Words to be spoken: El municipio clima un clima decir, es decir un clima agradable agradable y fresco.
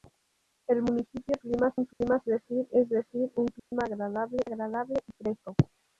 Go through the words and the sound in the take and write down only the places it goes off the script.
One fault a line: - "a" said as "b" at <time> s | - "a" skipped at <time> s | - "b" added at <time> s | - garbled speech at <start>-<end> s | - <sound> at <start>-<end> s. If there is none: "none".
- dropout at 1.9-2.0 s
- dropout at 3.6-3.7 s